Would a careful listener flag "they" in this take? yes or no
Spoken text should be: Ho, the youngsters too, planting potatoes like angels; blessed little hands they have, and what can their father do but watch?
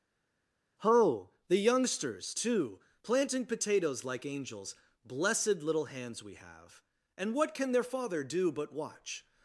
yes